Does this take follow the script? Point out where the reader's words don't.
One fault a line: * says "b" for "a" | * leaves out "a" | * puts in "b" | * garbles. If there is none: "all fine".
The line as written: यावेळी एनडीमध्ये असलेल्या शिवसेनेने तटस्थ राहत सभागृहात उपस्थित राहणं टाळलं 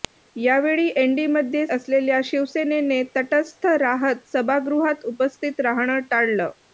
all fine